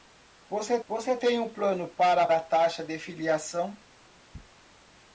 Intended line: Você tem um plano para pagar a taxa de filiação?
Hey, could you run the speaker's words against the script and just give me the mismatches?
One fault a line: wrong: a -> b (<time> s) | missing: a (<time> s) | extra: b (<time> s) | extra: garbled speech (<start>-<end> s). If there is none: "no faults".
extra: você (0.9 s)
missing: pagar (2.3 s)